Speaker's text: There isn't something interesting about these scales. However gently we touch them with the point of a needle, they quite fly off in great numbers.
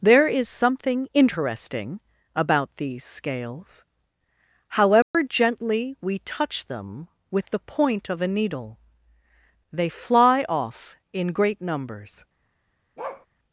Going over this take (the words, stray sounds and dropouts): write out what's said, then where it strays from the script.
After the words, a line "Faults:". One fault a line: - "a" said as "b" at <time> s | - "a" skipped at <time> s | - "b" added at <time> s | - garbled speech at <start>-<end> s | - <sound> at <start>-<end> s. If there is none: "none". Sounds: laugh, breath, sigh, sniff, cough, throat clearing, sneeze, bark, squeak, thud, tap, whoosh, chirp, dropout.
There is something interesting about these scales. However gently we touch them with the point of a needle, they fly off in great numbers.
Faults:
- "isn't" said as "is" at 0.3 s
- dropout at 5.0-5.1 s
- "quite" skipped at 9.9 s
- bark at 13.0-13.3 s